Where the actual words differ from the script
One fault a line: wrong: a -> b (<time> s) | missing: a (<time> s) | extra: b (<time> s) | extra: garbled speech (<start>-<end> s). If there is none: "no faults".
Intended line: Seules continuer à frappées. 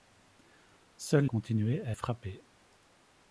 no faults